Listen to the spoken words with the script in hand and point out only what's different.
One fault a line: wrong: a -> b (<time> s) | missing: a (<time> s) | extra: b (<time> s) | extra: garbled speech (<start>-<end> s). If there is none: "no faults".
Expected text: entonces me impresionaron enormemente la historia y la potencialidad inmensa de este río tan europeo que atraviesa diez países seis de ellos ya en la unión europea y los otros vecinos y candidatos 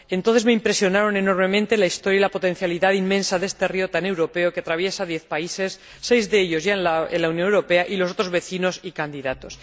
no faults